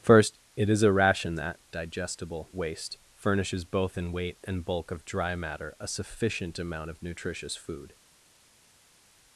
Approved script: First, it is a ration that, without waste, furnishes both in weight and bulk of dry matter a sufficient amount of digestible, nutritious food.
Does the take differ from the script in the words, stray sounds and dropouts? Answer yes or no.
yes